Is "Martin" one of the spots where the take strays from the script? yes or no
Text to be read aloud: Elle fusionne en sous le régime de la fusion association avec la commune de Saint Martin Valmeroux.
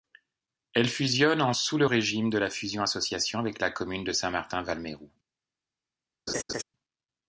no